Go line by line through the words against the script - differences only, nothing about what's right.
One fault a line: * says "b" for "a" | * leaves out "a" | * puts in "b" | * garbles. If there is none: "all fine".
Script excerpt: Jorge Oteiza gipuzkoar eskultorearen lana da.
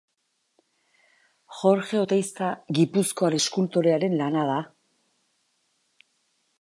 all fine